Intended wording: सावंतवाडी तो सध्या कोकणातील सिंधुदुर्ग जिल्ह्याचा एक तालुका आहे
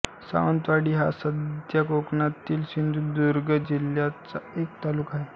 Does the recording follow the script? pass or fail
fail